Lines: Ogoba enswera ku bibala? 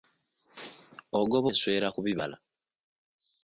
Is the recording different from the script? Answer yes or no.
no